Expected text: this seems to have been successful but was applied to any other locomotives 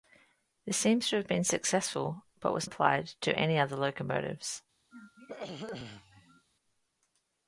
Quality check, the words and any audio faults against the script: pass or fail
fail